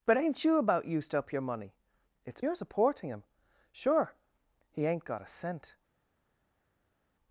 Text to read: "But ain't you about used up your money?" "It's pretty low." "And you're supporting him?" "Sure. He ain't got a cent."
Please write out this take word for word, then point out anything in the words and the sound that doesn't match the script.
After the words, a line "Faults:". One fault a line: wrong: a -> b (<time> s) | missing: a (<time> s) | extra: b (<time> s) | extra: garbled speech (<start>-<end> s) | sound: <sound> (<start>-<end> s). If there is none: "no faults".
"But ain't you about used up your money?" "It's you're supporting him?" "Sure. He ain't got a cent."
Faults:
missing: pretty low And (2.4 s)